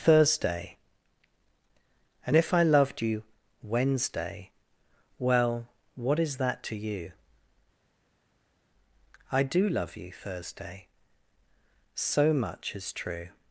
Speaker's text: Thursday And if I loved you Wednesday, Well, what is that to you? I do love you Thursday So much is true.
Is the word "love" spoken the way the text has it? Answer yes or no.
yes